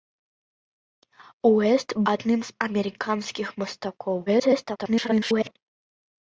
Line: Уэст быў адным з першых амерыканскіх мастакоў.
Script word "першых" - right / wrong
wrong